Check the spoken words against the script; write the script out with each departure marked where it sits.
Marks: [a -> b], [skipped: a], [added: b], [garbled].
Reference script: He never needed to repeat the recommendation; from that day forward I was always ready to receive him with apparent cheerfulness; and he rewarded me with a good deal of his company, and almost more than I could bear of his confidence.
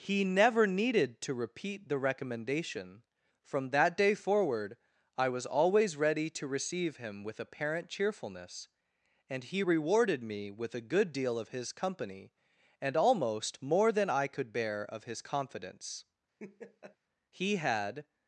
He never needed to repeat the recommendation; from that day forward I was always ready to receive him with apparent cheerfulness; and he rewarded me with a good deal of his company, and almost more than I could bear of his confidence. [added: He had]